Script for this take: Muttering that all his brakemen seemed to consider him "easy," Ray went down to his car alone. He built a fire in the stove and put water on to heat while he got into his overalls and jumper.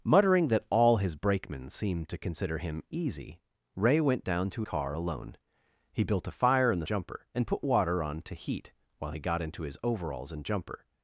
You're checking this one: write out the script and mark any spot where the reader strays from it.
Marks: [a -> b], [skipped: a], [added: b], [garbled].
Muttering that all his brakemen seemed to consider him "easy," Ray went down to [skipped: his] car alone. He built a fire in the [stove -> jumper] and put water on to heat while he got into his overalls and jumper.